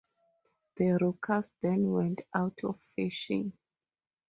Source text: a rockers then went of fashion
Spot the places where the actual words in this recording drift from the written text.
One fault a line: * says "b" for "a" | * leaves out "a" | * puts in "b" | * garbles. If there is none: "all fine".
* says "the" for "a"
* puts in "out"